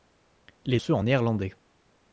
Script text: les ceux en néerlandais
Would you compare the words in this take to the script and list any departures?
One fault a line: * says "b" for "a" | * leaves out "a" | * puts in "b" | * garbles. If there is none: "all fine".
all fine